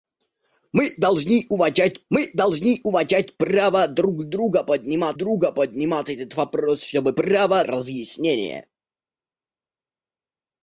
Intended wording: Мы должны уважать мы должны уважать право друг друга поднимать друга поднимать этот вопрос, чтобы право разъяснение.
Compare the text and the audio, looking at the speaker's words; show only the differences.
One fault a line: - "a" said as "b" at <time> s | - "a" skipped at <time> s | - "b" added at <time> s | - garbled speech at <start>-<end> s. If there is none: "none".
none